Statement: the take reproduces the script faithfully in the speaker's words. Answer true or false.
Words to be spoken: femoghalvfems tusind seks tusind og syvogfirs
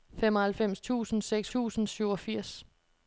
true